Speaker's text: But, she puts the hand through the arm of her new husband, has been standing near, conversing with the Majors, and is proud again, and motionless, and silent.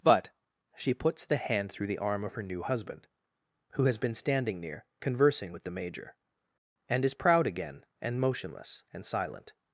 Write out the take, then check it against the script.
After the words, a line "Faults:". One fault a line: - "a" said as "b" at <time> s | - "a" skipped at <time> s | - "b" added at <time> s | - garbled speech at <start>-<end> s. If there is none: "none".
But, she puts the hand through the arm of her new husband, who has been standing near, conversing with the Major, and is proud again, and motionless, and silent.
Faults:
- "who" added at 3.7 s
- "Majors" said as "Major" at 5.7 s